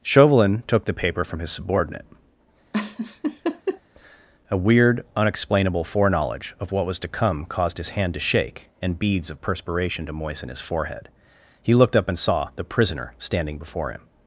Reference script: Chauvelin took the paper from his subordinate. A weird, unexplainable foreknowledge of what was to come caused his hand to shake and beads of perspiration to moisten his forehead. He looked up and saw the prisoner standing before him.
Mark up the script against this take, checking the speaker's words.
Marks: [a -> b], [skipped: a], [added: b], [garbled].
Chauvelin took the paper from his subordinate. A weird, unexplainable foreknowledge of what was to come caused his hand to shake and beads of perspiration to moisten his forehead. He looked up and saw the prisoner standing before him.